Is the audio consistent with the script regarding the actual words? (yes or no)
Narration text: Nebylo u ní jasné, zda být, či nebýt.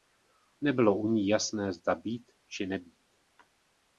yes